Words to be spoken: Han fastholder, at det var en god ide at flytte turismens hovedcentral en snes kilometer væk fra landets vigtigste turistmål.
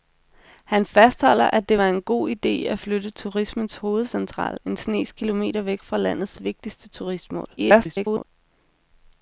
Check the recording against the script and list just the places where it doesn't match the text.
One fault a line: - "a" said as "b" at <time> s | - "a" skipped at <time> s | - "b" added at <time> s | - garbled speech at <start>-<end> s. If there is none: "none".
- garbled speech at 7.6-8.2 s